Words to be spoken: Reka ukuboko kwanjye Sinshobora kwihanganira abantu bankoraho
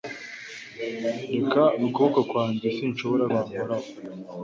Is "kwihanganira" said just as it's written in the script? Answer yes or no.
no